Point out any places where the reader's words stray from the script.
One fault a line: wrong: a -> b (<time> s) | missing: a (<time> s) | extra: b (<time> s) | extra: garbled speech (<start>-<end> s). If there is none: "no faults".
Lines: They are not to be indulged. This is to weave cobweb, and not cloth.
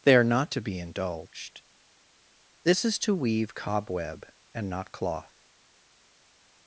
no faults